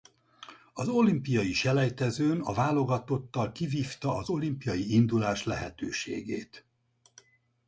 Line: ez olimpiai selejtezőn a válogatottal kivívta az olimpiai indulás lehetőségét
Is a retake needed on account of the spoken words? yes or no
yes